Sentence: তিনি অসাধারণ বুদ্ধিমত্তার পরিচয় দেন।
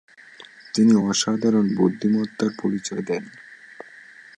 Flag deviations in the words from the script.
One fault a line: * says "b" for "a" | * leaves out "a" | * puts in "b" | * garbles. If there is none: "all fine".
all fine